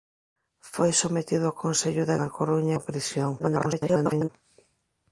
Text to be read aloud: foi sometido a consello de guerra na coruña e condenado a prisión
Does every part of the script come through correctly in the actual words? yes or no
no